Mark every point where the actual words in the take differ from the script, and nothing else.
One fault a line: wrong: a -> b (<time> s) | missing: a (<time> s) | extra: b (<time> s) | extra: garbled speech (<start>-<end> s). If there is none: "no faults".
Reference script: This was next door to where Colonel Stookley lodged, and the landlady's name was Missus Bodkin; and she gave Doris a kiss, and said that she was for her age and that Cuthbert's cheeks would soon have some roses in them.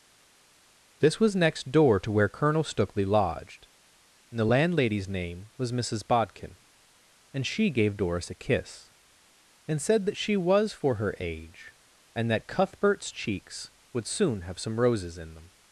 no faults